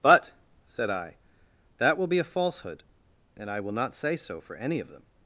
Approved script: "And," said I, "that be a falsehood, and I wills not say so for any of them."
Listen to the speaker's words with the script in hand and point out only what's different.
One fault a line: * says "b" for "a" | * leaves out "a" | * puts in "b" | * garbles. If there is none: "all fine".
* says "But" for "And"
* puts in "will"
* says "will" for "wills"